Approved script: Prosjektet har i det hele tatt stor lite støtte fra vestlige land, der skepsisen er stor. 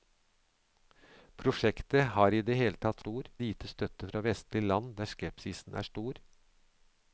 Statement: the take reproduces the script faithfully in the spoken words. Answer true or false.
true